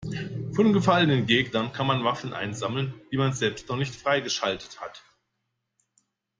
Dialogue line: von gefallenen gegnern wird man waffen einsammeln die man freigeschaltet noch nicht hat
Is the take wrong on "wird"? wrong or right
wrong